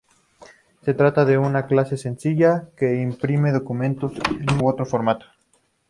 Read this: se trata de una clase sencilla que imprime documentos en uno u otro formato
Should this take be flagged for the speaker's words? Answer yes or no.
yes